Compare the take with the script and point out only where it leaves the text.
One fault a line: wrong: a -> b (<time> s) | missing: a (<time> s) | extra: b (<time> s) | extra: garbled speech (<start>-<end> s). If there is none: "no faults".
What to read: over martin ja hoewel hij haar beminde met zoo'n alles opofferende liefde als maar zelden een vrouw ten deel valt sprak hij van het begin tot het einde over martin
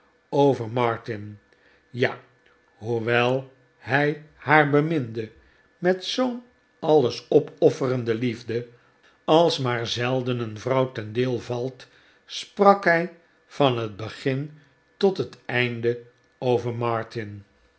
no faults